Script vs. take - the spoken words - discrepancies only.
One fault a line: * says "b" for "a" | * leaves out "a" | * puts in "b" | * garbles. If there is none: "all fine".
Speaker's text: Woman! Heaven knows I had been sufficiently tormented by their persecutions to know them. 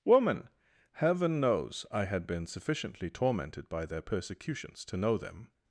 all fine